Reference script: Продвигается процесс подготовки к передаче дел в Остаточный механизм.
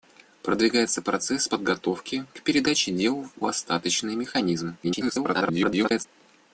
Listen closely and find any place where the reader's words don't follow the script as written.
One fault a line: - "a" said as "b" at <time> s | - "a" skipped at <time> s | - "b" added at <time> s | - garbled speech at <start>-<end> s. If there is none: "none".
- garbled speech at 4.8-6.1 s